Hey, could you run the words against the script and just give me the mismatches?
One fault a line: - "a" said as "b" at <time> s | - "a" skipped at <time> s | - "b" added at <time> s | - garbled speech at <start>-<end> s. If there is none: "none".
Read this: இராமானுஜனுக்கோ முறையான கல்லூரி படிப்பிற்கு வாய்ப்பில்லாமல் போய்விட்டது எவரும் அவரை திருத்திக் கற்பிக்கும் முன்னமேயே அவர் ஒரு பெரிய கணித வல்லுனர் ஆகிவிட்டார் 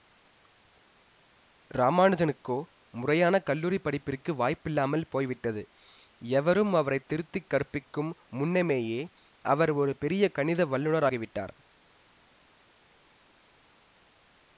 none